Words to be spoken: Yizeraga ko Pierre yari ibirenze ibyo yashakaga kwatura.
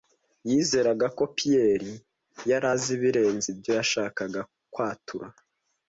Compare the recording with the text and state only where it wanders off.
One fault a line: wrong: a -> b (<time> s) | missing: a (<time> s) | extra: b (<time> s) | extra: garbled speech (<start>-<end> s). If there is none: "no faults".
extra: azi (2.7 s)